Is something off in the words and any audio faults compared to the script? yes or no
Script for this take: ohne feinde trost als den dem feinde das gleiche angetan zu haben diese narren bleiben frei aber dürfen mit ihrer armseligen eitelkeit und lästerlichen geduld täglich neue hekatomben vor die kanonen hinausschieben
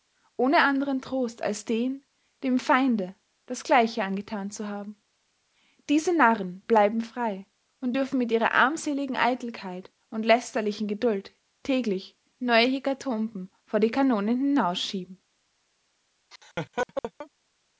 yes